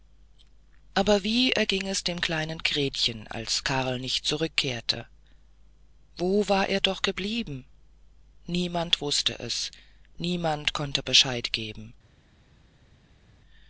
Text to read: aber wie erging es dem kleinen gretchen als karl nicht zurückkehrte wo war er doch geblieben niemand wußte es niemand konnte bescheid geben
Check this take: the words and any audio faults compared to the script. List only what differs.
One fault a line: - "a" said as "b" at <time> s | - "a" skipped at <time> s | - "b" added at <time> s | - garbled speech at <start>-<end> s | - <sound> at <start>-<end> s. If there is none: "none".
none